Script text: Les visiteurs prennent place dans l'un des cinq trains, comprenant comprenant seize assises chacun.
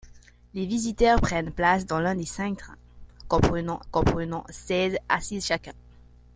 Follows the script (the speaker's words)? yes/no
yes